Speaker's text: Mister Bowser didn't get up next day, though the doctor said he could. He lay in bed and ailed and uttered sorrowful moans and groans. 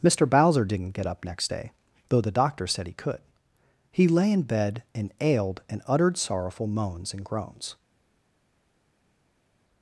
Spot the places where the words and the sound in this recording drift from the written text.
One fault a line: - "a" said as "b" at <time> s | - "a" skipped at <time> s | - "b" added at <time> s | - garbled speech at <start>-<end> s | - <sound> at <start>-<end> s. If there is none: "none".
none